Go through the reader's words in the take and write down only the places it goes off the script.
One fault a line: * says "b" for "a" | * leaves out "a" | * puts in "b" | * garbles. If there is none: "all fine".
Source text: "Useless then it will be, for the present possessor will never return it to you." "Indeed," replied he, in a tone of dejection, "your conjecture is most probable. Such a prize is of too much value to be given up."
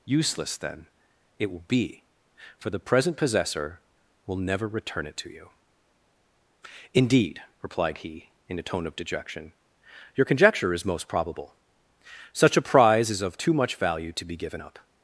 all fine